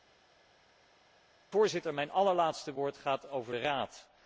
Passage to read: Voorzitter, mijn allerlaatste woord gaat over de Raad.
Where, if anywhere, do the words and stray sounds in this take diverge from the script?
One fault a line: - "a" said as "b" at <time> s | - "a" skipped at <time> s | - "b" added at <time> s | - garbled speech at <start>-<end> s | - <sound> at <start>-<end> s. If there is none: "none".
none